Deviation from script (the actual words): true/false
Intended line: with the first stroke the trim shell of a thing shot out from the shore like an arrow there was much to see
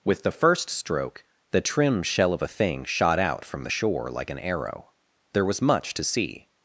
false